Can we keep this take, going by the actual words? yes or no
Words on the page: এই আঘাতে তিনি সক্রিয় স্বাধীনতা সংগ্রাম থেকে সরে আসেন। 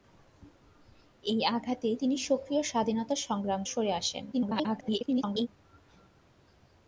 no